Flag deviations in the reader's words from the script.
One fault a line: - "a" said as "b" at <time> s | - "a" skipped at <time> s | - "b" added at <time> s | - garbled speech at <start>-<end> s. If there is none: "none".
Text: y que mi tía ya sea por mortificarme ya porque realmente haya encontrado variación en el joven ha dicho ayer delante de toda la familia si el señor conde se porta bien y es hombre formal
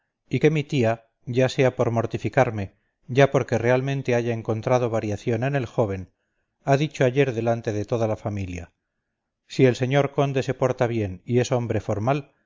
none